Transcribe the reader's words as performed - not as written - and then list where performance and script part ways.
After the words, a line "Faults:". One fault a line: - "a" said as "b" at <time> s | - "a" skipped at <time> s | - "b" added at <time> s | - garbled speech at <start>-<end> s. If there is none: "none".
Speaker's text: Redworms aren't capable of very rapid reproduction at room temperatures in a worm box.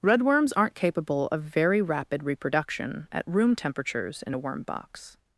Redworms aren't capable of very rapid reproduction at room temperatures in a worm box.
Faults:
none